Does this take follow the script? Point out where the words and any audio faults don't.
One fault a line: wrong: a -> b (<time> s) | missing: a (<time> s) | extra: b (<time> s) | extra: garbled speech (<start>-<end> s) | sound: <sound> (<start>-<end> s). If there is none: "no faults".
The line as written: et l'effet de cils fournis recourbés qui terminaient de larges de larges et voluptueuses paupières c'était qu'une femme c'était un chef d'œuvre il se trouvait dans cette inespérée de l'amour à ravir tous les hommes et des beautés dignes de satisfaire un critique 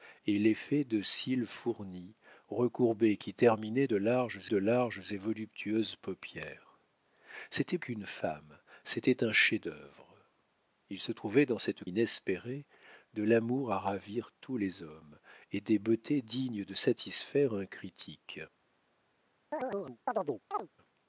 sound: chirp (19.5-20.7 s)